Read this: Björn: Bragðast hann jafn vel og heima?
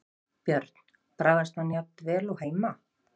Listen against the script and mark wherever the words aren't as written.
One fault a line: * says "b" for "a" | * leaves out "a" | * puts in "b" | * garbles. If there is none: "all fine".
all fine